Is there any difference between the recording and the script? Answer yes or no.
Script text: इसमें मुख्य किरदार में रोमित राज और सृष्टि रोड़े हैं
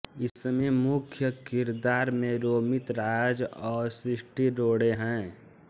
no